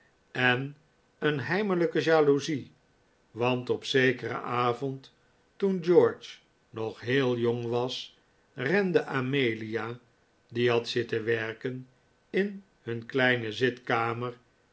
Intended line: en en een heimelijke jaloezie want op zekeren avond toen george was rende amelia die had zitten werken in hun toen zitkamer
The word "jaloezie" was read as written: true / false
true